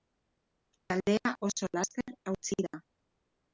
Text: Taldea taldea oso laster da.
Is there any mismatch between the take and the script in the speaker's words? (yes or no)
yes